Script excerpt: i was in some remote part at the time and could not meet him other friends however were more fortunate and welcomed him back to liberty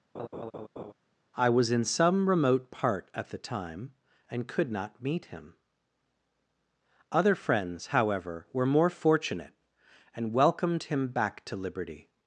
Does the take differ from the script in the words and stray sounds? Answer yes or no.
yes